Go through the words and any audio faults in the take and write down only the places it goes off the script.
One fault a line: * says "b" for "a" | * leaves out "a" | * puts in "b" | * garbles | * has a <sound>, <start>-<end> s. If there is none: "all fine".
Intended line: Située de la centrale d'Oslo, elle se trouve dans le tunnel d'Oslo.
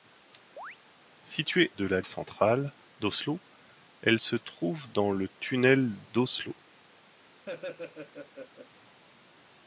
* has a chirp, 0.6-0.8 s
* has a laugh, 7.4-8.7 s